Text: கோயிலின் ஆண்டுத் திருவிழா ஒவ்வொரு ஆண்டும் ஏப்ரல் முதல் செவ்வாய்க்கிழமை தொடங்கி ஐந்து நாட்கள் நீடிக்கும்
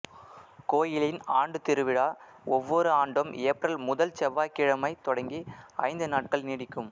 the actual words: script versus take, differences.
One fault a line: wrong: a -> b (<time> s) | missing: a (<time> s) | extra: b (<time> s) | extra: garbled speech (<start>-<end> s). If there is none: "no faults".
no faults